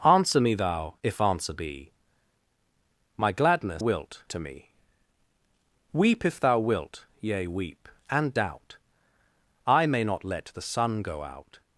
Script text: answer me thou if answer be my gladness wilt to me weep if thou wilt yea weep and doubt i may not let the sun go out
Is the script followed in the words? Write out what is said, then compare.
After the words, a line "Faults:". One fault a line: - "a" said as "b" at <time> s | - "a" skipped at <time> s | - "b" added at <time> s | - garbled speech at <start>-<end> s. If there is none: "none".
answer me thou if answer be my gladness wilt to me weep if thou wilt yea weep and doubt i may not let the sun go out
Faults:
none